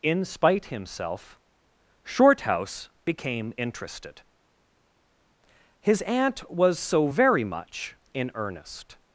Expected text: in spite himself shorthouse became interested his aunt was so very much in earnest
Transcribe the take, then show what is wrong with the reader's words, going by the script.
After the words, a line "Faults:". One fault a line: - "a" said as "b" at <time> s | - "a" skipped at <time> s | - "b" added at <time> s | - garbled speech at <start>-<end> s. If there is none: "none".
in spite himself shorthouse became interested his aunt was so very much in earnest
Faults:
none